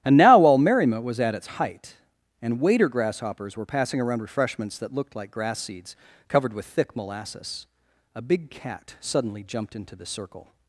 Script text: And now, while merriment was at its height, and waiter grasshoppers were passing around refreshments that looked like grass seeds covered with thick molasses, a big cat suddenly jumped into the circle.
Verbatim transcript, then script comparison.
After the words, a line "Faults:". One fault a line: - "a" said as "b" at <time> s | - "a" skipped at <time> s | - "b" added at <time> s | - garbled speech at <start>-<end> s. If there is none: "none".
And now, while merriment was at its height, and waiter grasshoppers were passing around refreshments that looked like grass seeds covered with thick molasses, a big cat suddenly jumped into the circle.
Faults:
none